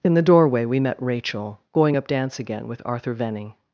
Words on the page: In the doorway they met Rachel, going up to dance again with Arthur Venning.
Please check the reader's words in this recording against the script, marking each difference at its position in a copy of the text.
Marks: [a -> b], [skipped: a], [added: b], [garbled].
In the doorway [they -> we] met Rachel, going up [skipped: to] dance again with Arthur Venning.